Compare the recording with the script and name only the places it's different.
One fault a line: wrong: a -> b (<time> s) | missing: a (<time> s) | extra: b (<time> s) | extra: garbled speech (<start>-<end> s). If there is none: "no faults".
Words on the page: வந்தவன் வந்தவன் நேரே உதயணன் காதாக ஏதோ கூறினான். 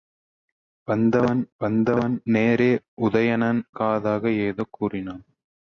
no faults